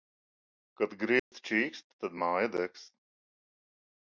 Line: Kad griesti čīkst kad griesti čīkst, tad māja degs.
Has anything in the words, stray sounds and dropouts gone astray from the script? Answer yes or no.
yes